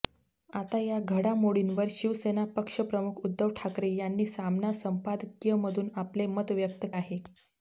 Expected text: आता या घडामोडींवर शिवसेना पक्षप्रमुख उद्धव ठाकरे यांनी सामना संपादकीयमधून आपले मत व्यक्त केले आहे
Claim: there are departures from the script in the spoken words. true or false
true